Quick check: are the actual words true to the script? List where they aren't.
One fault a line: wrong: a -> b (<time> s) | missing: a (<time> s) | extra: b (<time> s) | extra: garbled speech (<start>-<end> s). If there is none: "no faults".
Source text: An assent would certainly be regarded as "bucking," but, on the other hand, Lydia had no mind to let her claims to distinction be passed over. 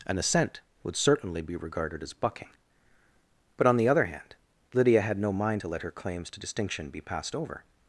no faults